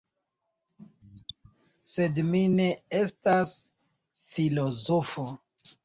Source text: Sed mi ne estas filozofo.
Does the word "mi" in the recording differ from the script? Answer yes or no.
no